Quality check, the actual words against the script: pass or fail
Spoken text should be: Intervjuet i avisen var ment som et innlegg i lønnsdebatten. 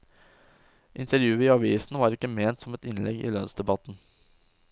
fail